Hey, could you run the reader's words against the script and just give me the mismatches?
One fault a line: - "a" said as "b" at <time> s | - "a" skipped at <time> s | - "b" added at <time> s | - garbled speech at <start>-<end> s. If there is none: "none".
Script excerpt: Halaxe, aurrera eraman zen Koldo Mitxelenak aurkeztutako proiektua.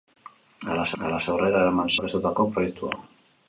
- "halaxe" added at 1.0 s
- "zen Koldo Mitxelenak" skipped at 1.9 s